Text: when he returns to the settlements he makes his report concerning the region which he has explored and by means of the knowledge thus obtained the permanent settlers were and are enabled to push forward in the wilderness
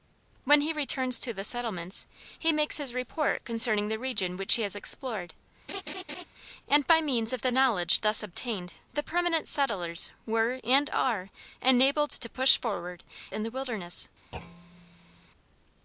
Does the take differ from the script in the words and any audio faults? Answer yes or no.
yes